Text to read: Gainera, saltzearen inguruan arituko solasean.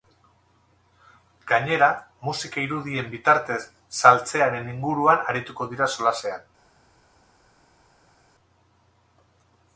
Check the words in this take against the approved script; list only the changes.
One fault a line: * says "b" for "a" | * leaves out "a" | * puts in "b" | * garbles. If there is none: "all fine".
* puts in "musika irudien bitartez"
* puts in "dira"